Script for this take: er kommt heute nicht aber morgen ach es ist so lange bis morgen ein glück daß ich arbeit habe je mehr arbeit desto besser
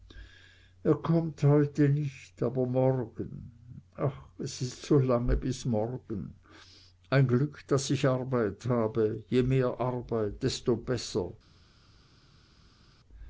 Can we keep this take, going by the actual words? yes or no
yes